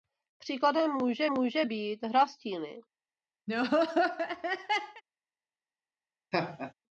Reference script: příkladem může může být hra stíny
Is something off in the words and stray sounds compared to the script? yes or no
yes